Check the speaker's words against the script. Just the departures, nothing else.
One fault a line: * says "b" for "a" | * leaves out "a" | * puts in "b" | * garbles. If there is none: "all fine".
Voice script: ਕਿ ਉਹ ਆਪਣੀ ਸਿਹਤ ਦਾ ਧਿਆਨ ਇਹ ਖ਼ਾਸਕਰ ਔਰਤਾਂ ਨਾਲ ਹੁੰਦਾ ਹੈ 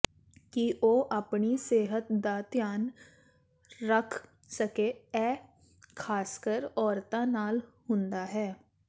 * puts in "ਰੱਖ ਸਕੇ"